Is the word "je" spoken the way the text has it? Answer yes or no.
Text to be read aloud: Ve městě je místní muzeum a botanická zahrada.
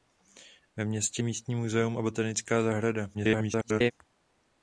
no